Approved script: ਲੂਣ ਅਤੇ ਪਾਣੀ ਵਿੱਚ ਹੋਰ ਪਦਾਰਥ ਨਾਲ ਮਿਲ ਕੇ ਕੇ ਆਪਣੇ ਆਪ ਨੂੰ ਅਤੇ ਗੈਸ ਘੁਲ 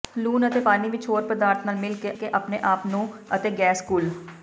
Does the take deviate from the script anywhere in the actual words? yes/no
no